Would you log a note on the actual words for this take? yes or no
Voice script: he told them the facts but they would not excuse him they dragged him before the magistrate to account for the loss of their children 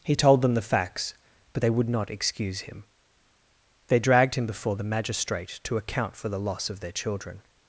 no